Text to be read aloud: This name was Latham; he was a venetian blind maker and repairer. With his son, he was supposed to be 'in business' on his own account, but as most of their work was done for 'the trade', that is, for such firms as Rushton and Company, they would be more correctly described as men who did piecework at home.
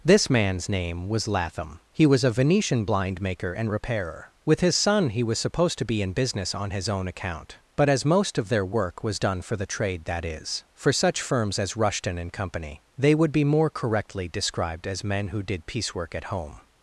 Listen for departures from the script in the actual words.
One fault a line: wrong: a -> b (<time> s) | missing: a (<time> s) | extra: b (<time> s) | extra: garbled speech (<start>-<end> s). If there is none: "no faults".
extra: man's (0.3 s)